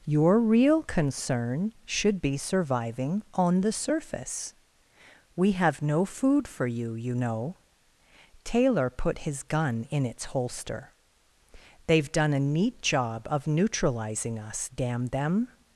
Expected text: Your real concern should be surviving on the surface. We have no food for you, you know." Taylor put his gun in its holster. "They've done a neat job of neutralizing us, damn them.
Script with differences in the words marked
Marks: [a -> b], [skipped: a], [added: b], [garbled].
Your real concern should be surviving on the surface. We have no food for you, you know." Taylor put his gun in its holster. "They've done a neat job of neutralizing us, damn them.